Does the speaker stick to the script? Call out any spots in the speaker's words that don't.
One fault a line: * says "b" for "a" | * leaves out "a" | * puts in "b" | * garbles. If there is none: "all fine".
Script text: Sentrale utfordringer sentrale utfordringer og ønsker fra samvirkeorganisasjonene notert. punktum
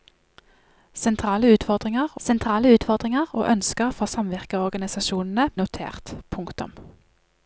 all fine